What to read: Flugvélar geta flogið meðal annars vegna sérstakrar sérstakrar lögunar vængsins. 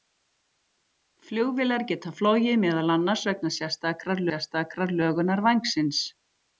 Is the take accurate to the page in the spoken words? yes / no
yes